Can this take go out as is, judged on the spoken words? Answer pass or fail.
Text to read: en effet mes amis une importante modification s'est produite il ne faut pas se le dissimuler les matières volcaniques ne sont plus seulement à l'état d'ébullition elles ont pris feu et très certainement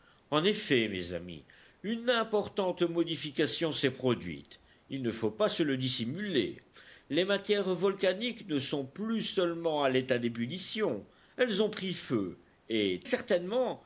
fail